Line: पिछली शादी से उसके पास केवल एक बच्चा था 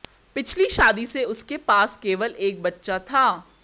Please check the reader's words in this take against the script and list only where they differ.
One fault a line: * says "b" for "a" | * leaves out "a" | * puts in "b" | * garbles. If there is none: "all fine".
all fine